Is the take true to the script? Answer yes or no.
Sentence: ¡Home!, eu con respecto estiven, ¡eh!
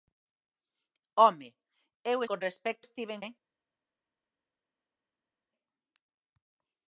yes